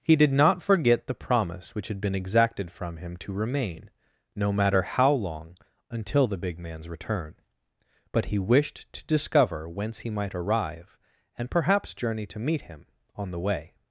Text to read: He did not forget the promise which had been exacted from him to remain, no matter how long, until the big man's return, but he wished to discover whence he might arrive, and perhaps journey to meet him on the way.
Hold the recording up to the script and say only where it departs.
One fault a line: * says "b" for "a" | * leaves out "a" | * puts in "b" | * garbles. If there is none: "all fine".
all fine